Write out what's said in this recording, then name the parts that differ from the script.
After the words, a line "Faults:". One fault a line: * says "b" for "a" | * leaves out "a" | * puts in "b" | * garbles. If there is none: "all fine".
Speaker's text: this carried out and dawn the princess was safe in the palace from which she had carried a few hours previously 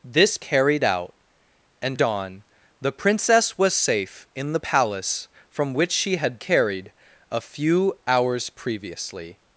this carried out and dawn the princess was safe in the palace from which she had carried a few hours previously
Faults:
all fine